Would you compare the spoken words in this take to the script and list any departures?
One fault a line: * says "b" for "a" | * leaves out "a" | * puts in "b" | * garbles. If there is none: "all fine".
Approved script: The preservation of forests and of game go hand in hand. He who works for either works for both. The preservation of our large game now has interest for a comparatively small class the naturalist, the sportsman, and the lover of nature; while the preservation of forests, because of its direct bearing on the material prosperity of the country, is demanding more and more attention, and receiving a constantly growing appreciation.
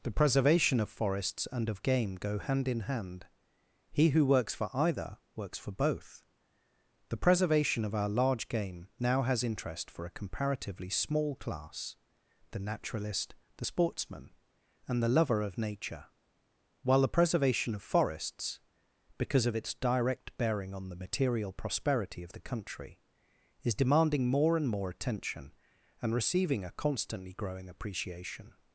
all fine